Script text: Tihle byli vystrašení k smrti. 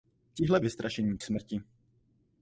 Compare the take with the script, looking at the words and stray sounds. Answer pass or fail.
fail